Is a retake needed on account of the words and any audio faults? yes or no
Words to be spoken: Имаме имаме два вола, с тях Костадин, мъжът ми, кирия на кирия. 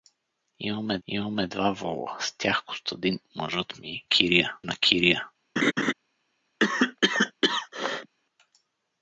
yes